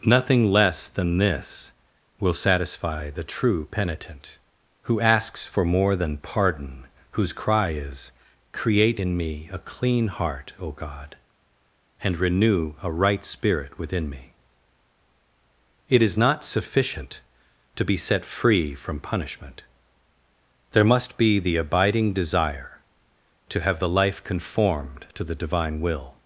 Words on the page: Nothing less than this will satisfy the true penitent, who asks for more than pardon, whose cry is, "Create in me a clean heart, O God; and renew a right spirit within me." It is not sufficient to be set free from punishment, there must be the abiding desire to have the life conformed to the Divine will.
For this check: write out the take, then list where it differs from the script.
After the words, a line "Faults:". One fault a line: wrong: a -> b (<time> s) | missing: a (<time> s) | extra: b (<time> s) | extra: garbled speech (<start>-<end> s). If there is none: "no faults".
Nothing less than this will satisfy the true penitent, who asks for more than pardon, whose cry is, "Create in me a clean heart, O God; and renew a right spirit within me." It is not sufficient to be set free from punishment, there must be the abiding desire to have the life conformed to the Divine will.
Faults:
no faults